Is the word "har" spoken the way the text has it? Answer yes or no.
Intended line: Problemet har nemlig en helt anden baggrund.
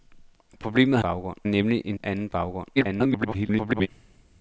no